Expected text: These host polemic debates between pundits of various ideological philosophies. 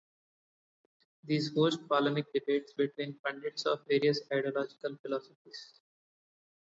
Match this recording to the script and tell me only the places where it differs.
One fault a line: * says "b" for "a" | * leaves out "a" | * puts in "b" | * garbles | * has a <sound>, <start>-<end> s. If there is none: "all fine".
all fine